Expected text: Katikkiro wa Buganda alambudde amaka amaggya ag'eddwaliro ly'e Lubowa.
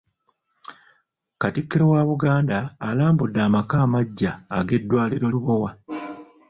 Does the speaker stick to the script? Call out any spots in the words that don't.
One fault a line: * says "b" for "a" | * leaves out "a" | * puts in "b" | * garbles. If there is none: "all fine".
* leaves out "ly'e"